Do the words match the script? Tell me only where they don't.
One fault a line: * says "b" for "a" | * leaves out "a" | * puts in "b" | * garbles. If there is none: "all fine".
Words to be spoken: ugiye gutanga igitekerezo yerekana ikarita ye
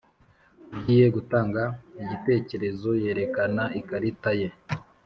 all fine